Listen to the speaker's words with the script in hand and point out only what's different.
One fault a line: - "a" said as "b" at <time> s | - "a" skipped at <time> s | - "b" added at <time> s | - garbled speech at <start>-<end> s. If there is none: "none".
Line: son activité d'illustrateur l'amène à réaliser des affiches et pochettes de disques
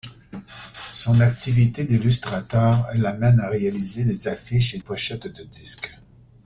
none